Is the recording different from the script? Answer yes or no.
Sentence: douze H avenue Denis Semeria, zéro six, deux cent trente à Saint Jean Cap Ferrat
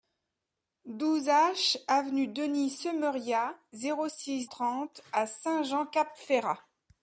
yes